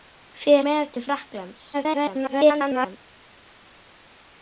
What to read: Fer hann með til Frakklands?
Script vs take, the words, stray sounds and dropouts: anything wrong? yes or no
yes